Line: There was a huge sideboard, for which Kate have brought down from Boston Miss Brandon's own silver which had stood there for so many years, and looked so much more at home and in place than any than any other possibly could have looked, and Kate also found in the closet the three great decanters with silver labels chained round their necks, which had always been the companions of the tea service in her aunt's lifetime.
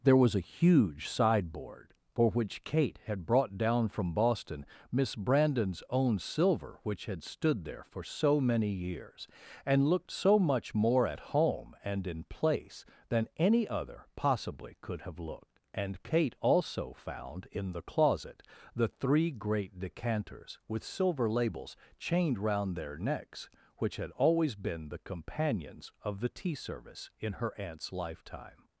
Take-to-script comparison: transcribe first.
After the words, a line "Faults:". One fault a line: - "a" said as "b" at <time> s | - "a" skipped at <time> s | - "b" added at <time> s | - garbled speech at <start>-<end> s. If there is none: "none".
There was a huge sideboard, for which Kate had brought down from Boston Miss Brandon's own silver which had stood there for so many years, and looked so much more at home and in place than any other possibly could have looked, and Kate also found in the closet the three great decanters with silver labels chained round their necks, which had always been the companions of the tea service in her aunt's lifetime.
Faults:
- "have" said as "had" at 3.0 s
- "than any" skipped at 13.7 s